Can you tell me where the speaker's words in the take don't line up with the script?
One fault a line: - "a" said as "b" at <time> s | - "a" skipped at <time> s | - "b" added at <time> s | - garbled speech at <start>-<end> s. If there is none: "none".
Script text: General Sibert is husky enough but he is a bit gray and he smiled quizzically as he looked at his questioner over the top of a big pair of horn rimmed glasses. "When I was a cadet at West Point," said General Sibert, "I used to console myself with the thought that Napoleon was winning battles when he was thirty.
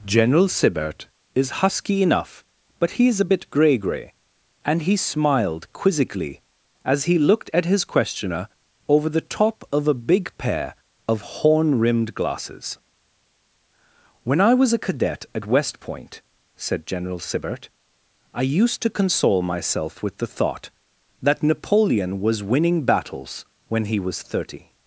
- "gray" added at 3.8 s